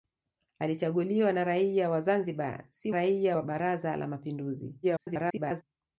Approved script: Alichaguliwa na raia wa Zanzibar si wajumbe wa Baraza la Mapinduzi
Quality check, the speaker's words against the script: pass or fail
fail